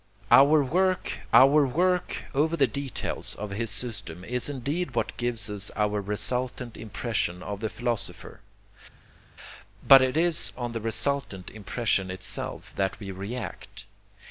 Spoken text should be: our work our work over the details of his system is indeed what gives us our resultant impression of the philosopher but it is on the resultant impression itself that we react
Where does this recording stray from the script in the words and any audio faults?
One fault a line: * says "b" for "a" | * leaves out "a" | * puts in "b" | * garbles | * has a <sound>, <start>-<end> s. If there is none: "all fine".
all fine